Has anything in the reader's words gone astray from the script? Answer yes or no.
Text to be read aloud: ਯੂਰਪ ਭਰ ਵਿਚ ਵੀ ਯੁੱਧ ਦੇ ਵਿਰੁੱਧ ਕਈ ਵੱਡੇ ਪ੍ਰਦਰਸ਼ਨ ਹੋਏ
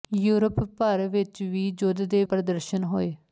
yes